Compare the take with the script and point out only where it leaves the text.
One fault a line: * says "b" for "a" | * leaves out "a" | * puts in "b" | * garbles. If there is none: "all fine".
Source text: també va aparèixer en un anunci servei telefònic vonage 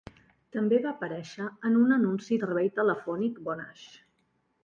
all fine